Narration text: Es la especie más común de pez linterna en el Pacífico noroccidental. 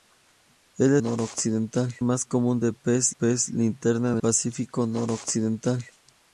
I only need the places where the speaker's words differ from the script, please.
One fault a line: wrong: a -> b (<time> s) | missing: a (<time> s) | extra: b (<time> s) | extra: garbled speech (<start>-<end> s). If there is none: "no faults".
wrong: especie -> noroccidental (1.0 s)
extra: pez (3.1 s)
missing: el (4.2 s)